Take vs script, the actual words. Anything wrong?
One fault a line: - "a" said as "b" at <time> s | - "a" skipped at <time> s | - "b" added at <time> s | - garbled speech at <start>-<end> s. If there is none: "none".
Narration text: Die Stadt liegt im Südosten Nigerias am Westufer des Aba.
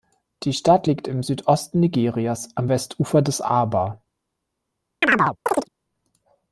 none